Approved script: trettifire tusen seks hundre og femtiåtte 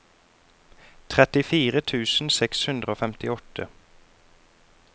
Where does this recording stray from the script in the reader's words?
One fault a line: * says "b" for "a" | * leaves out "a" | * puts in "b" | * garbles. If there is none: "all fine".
all fine